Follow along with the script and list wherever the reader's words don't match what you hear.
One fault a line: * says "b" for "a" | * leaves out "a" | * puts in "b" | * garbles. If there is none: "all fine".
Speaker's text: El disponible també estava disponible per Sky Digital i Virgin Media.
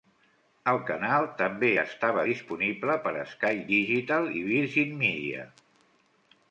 * says "canal" for "disponible"